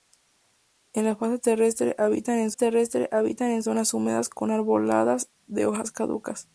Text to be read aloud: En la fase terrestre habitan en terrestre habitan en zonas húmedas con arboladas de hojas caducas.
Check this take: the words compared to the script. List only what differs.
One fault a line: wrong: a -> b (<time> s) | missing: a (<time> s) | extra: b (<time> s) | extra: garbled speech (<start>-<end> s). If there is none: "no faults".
no faults